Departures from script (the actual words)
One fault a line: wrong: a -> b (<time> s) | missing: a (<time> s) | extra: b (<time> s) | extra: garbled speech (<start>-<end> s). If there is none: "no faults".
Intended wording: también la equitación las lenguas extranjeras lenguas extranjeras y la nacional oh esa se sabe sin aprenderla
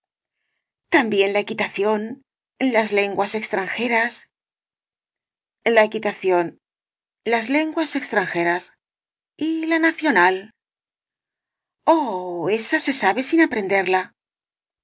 extra: la equitación las (5.6 s)